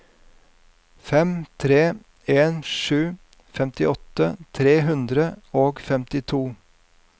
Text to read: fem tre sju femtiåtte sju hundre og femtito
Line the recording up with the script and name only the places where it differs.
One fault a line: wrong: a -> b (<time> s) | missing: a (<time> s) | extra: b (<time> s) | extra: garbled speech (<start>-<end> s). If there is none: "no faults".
extra: en (2.4 s)
wrong: sju -> tre (4.6 s)